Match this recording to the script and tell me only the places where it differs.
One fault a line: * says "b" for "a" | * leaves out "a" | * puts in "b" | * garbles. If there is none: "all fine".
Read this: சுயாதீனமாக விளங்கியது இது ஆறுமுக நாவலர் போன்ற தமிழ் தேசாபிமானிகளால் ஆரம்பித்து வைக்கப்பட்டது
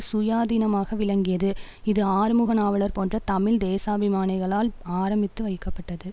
all fine